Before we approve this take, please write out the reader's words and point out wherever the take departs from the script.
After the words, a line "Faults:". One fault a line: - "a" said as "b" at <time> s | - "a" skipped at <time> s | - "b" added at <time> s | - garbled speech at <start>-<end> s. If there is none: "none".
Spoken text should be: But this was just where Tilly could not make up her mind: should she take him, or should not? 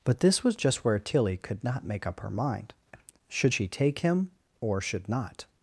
But this was just where Tilly could not make up her mind: should she take him, or should not?
Faults:
none